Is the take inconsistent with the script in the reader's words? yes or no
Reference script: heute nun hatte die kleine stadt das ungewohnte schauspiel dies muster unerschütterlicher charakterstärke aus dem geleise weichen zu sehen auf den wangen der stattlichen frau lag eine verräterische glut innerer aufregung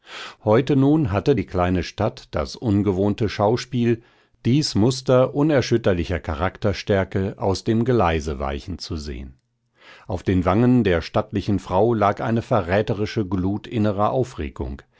no